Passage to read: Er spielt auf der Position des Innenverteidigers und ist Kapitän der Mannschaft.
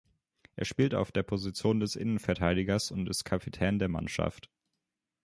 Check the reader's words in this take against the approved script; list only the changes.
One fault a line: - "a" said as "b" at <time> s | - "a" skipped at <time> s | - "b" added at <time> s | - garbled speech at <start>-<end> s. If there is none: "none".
none